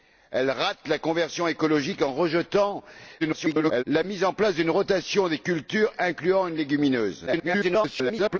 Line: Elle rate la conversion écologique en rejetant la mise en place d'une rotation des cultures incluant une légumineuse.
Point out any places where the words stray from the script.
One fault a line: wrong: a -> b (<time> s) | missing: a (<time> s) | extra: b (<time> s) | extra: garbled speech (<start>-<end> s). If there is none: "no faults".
extra: garbled speech (3.2-3.8 s)
extra: garbled speech (7.3-8.4 s)